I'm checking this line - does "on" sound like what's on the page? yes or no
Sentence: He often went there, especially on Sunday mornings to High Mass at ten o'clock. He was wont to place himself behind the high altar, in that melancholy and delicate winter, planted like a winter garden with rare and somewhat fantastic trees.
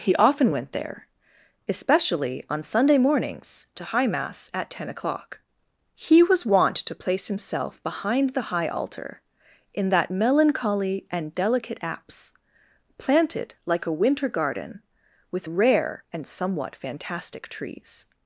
yes